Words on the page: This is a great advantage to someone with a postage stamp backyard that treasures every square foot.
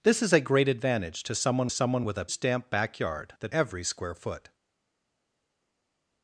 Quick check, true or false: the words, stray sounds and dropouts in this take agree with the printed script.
false